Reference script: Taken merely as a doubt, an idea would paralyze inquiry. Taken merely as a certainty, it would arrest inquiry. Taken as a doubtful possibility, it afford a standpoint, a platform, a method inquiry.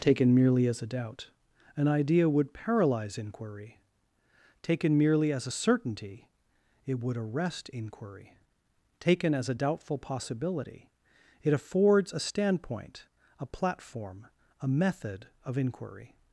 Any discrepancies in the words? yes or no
yes